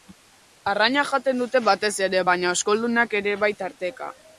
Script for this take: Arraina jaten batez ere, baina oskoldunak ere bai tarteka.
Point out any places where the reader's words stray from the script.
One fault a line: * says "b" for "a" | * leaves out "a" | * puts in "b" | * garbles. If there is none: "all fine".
* puts in "dute"